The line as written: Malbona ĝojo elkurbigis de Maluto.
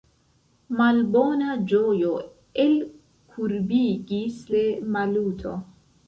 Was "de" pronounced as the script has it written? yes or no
yes